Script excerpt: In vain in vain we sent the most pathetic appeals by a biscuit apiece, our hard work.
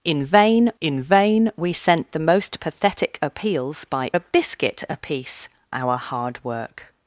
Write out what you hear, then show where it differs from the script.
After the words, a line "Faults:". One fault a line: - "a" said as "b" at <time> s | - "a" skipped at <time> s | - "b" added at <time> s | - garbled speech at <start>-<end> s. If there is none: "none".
In vain in vain we sent the most pathetic appeals by a biscuit apiece, our hard work.
Faults:
none